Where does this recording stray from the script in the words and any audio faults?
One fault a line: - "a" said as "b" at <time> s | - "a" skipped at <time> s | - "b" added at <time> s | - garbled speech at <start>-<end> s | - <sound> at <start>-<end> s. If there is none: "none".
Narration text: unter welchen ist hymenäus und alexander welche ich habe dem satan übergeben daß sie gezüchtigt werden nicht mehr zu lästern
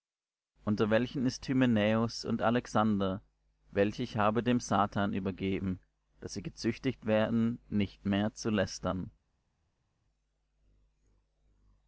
none